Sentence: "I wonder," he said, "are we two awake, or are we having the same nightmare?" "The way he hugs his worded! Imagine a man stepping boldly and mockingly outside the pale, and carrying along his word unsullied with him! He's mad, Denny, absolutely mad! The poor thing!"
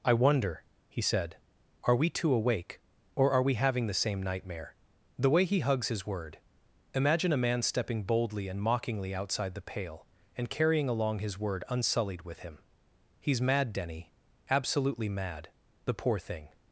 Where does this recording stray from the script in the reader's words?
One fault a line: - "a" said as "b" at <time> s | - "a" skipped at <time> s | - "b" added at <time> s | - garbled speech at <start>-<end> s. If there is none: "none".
- "worded" said as "word" at 6.1 s